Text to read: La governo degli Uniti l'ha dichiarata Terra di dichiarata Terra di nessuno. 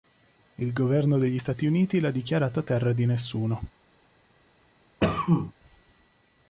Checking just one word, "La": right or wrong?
wrong